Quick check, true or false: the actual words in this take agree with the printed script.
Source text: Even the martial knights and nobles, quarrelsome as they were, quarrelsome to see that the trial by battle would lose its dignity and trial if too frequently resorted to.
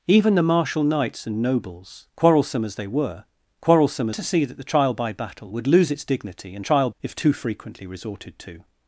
true